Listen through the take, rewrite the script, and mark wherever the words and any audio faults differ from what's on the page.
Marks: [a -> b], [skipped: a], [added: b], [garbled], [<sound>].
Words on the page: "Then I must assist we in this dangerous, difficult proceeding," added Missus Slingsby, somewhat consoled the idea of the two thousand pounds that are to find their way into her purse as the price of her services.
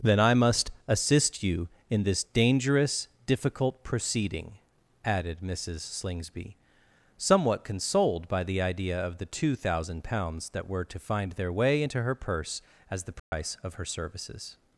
"Then I must assist [we -> you] in this dangerous, difficult proceeding," added Missus Slingsby, somewhat consoled [added: by] the idea of the two thousand pounds that [are -> were] to find their way into her purse as the price [dropout] of her services.